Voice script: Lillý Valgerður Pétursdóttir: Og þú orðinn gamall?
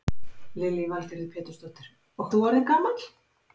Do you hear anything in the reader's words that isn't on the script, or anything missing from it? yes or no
no